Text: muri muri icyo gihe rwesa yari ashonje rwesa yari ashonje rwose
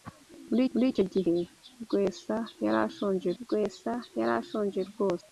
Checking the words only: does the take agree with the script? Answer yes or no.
yes